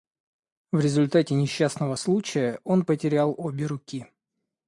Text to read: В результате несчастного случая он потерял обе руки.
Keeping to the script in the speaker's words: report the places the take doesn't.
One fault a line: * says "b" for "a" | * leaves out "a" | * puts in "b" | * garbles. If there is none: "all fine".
all fine